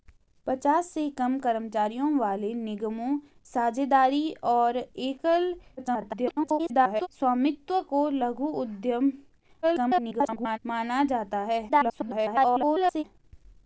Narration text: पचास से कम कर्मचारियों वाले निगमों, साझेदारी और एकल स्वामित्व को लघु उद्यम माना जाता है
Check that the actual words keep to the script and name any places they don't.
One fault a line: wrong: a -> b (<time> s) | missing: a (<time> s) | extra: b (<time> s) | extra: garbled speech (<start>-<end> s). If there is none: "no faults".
extra: garbled speech (5.8-7.1 s)
extra: garbled speech (9.6-10.6 s)
extra: garbled speech (11.7-13.0 s)